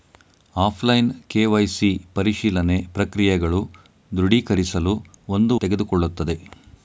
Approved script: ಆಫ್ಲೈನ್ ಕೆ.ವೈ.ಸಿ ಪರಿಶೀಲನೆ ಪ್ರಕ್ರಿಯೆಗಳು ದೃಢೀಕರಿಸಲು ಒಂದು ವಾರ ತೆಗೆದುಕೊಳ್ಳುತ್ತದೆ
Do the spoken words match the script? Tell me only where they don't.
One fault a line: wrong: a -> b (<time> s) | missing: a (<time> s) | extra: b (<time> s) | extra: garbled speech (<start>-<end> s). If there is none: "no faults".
missing: ವಾರ (5.6 s)